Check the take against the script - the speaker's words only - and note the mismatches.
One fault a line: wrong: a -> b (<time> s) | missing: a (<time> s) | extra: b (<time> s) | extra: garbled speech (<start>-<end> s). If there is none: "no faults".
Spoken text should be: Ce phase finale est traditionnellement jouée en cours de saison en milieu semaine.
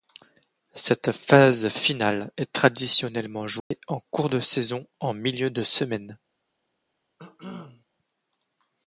wrong: Ce -> Cette (0.7 s)
extra: de (5.5 s)